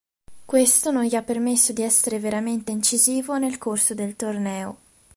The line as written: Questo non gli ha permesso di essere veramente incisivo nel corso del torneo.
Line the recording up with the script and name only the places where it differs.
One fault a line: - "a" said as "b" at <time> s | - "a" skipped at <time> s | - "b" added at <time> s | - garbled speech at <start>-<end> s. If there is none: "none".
none